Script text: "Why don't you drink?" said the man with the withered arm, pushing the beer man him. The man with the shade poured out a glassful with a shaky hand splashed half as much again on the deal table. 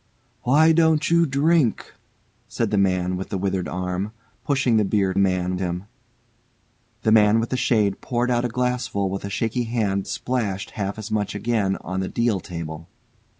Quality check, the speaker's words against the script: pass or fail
pass